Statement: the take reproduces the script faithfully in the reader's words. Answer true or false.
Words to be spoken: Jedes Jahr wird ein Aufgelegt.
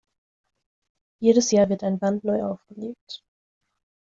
false